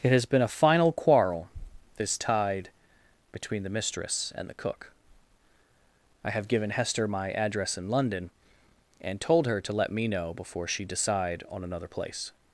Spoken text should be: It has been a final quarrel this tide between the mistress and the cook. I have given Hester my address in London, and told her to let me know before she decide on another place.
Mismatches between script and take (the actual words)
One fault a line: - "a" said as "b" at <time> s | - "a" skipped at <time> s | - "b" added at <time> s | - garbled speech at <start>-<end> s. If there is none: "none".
none